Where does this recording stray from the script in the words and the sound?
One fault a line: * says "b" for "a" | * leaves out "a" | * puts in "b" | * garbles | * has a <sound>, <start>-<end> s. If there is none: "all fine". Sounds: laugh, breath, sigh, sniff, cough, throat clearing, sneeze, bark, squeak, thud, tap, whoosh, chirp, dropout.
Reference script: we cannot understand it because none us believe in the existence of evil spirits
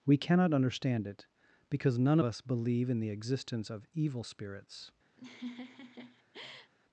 * has a laugh, 5.2-6.7 s